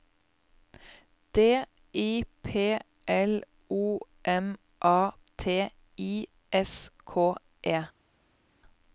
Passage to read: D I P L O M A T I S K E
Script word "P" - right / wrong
right